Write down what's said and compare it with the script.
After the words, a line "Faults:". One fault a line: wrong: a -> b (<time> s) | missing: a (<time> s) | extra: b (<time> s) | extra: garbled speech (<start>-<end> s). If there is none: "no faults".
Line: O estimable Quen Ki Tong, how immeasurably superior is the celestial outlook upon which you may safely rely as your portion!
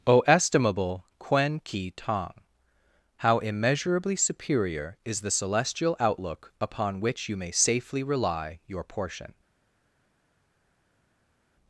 O estimable Quen Ki Tong, how immeasurably superior is the celestial outlook upon which you may safely rely your portion!
Faults:
missing: as (8.6 s)